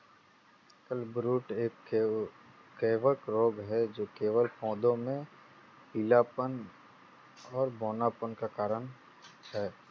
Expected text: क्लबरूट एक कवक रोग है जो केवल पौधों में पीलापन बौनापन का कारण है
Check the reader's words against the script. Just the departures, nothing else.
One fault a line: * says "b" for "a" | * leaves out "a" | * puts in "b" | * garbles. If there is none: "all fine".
* puts in "और"